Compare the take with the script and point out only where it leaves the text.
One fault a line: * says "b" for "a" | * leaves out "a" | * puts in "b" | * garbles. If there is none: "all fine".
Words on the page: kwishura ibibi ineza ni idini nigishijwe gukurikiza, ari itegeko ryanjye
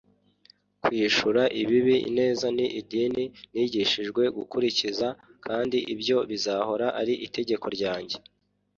* puts in "kandi ibyo bizahora"